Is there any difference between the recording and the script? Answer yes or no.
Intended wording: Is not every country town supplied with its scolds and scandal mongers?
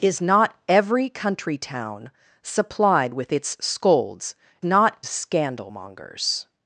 yes